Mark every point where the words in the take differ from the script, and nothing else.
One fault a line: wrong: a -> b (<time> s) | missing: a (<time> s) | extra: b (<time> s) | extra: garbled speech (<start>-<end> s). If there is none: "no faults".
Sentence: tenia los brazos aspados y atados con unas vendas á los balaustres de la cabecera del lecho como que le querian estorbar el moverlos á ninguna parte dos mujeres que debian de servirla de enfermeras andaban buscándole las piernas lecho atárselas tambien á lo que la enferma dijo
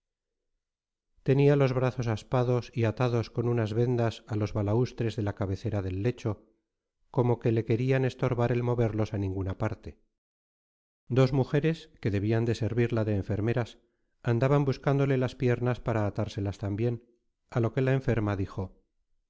wrong: lecho -> para (15.8 s)